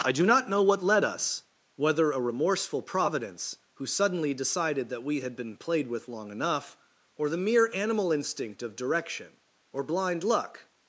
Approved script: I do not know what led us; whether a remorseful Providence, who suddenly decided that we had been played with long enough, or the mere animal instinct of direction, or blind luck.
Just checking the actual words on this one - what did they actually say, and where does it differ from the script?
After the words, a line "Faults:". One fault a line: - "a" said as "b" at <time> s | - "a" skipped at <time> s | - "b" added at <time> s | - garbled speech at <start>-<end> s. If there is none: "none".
I do not know what led us; whether a remorseful Providence, who suddenly decided that we had been played with long enough, or the mere animal instinct of direction, or blind luck.
Faults:
none